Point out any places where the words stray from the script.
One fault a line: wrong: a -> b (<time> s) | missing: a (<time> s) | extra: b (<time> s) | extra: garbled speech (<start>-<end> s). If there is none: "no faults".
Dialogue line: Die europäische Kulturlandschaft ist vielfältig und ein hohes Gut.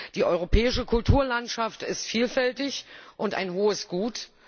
no faults